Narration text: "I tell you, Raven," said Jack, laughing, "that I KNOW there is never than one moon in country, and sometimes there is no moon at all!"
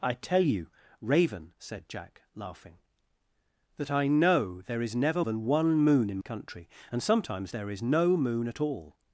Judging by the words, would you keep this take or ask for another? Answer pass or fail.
pass